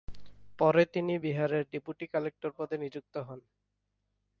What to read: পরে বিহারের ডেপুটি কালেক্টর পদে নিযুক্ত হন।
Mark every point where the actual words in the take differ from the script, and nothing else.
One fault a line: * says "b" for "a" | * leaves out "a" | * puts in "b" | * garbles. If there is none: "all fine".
* puts in "তিনি"